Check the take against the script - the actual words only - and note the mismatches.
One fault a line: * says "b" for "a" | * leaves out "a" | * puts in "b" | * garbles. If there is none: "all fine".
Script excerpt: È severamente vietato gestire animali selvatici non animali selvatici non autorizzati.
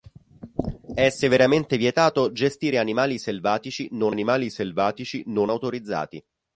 all fine